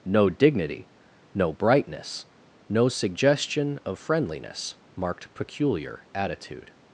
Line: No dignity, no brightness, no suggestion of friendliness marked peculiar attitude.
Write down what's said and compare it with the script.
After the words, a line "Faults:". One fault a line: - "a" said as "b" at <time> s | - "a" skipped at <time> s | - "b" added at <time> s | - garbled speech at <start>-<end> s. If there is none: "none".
No dignity, no brightness, no suggestion of friendliness marked peculiar attitude.
Faults:
none